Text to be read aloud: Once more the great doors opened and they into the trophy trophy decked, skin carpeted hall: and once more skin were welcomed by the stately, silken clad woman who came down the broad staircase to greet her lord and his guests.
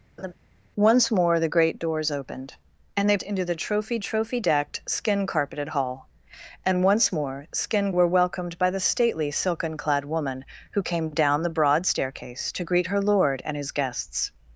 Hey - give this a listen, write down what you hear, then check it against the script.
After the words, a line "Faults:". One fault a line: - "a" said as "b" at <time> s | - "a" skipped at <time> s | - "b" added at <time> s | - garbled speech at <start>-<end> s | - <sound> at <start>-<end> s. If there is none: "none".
Once more the great doors opened and they into the trophy trophy decked, skin carpeted hall: and once more skin were welcomed by the stately, silken clad woman who came down the broad staircase to greet her lord and his guests.
Faults:
- laugh at 0.2-0.3 s